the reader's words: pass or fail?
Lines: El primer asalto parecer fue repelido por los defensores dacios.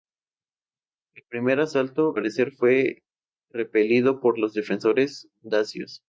pass